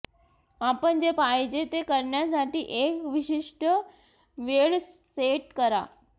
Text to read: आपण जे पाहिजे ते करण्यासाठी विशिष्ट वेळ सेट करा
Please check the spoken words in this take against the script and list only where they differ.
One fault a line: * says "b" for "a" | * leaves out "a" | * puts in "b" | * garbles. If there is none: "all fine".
* puts in "एक"